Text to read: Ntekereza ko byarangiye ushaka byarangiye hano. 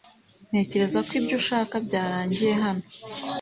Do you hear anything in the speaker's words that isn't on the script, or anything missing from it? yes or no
yes